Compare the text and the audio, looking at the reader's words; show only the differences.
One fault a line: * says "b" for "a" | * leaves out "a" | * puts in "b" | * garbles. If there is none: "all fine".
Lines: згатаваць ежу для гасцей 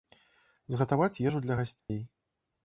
all fine